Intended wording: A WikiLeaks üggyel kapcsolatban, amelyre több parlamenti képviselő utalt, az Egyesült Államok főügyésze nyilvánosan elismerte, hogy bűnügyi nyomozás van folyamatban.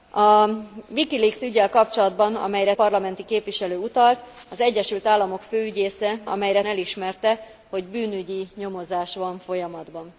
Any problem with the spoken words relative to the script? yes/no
yes